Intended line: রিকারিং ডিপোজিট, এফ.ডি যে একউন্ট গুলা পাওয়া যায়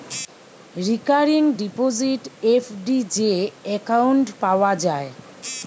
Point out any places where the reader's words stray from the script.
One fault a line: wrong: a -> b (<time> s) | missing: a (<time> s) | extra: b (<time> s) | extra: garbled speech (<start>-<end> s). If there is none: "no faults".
missing: গুলা (4.3 s)